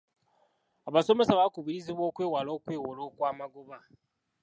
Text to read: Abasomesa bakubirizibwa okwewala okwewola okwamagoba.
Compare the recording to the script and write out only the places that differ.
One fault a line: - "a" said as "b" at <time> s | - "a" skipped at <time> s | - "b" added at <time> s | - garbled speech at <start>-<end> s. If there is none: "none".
none